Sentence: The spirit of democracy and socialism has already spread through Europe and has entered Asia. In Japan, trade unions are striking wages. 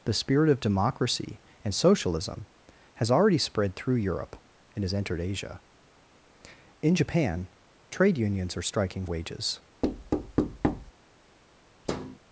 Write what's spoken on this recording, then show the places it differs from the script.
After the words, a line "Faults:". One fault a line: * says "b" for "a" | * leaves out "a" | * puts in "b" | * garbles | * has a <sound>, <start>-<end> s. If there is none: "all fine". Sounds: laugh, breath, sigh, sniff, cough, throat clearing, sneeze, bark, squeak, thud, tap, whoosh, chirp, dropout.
The spirit of democracy and socialism has already spread through Europe and has entered Asia. In Japan, trade unions are striking wages.
Faults:
* has a thud, 9.8-10.9 s
* has a thud, 11.9-12.2 s